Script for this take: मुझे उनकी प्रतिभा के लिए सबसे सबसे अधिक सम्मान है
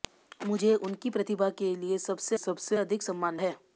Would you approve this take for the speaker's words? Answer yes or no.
yes